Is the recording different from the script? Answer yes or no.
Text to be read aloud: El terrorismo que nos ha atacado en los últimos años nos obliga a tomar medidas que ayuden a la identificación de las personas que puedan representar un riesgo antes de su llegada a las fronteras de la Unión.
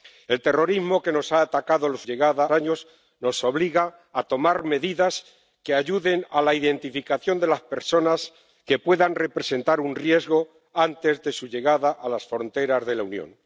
yes